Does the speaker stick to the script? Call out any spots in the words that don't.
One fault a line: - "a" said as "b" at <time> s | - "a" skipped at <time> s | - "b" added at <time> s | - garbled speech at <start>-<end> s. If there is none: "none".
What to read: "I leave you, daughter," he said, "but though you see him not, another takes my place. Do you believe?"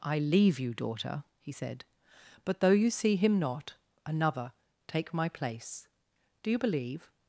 - "takes" said as "take" at 4.9 s